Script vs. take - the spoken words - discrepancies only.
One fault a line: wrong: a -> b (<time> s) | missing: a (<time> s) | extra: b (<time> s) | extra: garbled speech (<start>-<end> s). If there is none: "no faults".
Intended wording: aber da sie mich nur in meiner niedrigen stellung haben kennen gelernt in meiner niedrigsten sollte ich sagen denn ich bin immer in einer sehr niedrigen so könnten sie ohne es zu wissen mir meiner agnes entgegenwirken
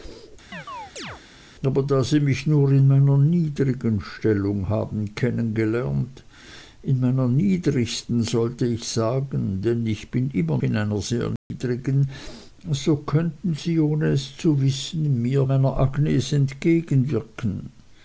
no faults